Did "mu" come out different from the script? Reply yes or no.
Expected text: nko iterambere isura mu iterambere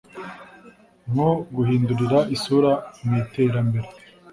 no